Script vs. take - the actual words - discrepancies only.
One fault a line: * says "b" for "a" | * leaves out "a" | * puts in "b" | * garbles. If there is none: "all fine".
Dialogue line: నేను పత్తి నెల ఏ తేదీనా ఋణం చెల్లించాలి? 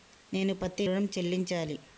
* leaves out "నెల ఏ తేదీనా"